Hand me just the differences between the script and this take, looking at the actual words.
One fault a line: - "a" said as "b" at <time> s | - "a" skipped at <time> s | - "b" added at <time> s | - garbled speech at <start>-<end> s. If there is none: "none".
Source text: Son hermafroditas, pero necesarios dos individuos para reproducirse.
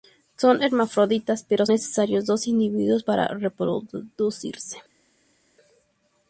none